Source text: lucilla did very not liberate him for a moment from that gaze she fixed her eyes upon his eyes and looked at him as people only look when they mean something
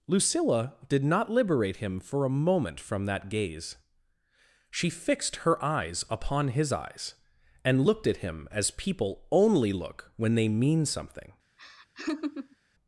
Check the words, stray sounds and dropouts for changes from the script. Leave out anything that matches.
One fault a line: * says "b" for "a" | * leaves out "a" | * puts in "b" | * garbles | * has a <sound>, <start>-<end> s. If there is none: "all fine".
* leaves out "very"
* has a laugh, 11.6-12.6 s